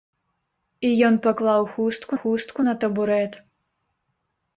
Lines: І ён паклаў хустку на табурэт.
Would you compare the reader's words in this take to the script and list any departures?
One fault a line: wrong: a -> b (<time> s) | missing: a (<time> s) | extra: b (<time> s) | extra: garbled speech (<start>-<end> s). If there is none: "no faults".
extra: хустку (2.2 s)